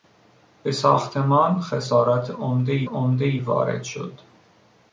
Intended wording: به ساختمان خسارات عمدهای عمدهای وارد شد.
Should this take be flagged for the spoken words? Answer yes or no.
no